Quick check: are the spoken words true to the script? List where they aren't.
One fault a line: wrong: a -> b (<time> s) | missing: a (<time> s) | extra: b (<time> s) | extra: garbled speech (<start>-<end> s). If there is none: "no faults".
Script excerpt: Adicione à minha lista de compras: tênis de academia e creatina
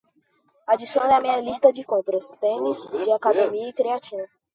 no faults